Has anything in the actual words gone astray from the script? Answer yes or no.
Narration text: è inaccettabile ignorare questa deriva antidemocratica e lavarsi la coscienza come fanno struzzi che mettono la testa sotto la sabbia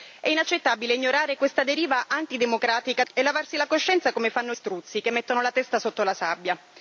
no